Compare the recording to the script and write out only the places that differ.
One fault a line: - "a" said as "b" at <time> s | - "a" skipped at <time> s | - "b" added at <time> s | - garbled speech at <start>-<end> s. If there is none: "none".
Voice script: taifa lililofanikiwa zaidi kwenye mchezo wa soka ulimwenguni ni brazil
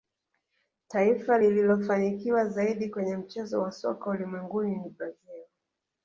none